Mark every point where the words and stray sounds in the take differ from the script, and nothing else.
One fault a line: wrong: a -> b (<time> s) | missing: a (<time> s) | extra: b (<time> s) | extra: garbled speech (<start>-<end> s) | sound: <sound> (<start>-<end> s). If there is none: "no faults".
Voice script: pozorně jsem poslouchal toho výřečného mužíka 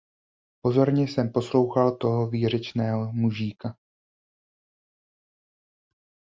no faults